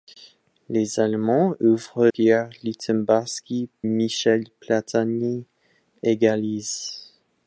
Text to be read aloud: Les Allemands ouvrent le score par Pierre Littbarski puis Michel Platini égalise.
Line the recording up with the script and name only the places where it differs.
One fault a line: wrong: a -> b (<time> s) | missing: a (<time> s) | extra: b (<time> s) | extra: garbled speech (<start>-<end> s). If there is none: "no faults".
missing: le score par (2.1 s)
missing: puis (3.7 s)